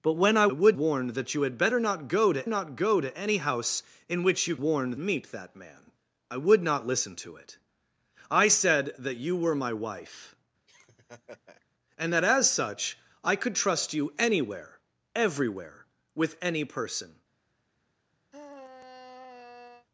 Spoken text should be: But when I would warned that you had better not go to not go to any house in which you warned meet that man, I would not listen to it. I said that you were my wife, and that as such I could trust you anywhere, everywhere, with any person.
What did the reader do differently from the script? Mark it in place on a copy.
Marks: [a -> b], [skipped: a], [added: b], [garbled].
But when I would warned that you had better not go to not go to any house in which you warned meet that man, I would not listen to it. I said that you were my wife, and that as such I could trust you anywhere, everywhere, with any person.